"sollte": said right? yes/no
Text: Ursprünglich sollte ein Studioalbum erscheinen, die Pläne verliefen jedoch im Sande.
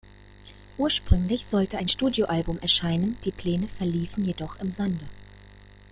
yes